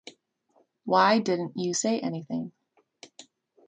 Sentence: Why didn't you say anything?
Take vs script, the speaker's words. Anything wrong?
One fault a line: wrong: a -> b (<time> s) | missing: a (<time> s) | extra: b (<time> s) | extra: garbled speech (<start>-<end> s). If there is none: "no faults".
no faults